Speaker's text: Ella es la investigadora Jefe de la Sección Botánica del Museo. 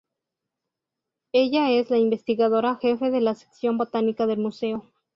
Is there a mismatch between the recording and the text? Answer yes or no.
no